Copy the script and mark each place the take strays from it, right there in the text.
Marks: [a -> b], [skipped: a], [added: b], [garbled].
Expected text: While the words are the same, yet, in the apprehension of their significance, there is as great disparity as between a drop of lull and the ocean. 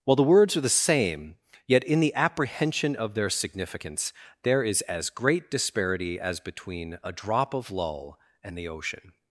While the words are the same, yet, in the apprehension of their significance, there is as great disparity as between a drop of lull and the ocean.